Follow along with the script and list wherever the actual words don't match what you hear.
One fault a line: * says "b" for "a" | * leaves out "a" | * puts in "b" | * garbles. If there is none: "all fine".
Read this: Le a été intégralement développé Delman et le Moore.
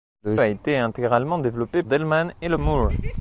all fine